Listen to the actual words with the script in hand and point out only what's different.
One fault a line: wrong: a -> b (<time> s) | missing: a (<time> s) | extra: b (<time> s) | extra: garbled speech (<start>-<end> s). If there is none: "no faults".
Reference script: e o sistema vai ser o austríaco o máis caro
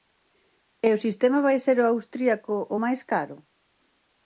no faults